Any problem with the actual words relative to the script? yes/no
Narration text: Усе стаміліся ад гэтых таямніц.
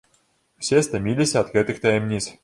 no